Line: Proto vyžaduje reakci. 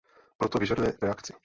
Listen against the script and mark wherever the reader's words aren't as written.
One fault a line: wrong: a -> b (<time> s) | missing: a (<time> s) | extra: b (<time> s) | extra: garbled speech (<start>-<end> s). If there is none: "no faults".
no faults